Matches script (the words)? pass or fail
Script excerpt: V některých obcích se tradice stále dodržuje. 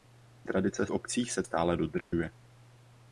fail